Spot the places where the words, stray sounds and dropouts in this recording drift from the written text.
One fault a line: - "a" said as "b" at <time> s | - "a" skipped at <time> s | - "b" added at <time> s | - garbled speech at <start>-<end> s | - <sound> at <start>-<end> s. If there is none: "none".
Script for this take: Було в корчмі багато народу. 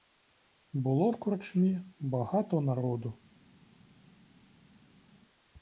none